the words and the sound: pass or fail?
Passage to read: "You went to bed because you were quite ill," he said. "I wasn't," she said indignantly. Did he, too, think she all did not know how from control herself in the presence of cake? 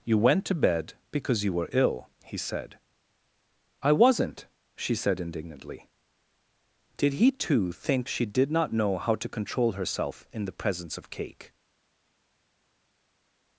fail